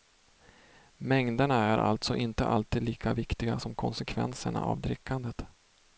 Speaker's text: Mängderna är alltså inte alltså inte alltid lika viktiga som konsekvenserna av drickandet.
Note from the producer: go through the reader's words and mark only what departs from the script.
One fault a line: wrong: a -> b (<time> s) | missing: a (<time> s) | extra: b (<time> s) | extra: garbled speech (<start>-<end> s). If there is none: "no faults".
missing: alltså inte (2.5 s)